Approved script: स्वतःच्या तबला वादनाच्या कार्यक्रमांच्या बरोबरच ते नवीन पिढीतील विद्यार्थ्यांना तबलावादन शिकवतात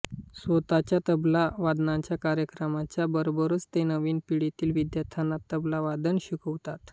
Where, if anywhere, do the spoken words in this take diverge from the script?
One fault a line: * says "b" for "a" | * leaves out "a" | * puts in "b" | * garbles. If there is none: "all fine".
all fine